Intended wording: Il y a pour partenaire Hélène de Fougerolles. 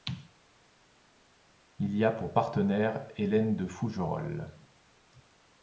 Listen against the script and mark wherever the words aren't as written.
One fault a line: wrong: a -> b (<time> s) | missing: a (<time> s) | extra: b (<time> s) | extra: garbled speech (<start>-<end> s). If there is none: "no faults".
no faults